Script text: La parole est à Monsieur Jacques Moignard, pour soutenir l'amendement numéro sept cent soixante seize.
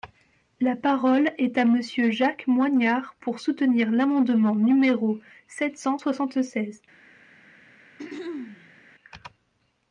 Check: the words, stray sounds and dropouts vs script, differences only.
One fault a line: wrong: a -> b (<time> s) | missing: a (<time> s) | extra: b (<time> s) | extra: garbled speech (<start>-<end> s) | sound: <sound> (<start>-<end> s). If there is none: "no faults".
sound: throat clearing (8.0-8.8 s)